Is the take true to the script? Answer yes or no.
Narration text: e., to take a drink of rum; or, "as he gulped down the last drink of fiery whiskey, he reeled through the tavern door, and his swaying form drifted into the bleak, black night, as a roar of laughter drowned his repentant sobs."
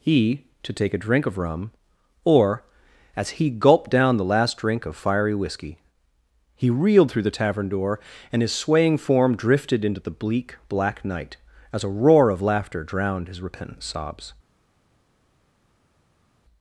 no